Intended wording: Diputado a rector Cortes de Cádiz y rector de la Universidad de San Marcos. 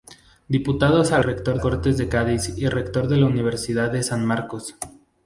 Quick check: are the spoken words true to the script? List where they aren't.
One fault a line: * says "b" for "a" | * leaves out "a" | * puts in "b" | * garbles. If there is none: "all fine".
all fine